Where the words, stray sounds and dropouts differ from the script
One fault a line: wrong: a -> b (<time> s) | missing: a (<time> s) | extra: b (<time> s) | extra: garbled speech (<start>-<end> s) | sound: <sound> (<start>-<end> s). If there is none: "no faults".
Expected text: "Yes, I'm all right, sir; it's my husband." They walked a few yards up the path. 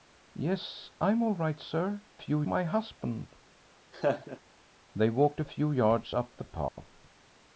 wrong: it's -> few (2.2 s)
sound: laugh (3.9-4.4 s)
sound: dropout (6.7-6.8 s)